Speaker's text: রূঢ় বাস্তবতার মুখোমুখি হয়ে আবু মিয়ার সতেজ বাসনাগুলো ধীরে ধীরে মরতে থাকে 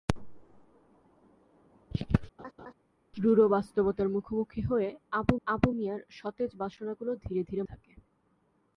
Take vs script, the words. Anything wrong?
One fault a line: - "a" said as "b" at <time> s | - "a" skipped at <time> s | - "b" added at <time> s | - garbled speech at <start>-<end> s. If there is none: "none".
- "আবু" added at 5.5 s
- "মরতে" skipped at 7.6 s